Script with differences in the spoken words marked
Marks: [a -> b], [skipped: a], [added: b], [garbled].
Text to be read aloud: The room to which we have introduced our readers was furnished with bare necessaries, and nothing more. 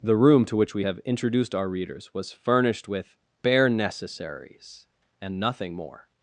The room to which we have introduced our readers was furnished with bare necessaries, and nothing more.